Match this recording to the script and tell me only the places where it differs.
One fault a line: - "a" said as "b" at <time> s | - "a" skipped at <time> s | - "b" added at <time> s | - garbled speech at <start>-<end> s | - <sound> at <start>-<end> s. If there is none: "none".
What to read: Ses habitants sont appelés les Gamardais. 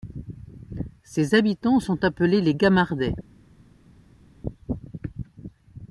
none